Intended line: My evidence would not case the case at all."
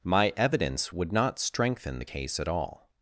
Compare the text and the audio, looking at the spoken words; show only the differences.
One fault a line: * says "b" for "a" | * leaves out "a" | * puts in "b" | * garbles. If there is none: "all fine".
* says "strengthen" for "case"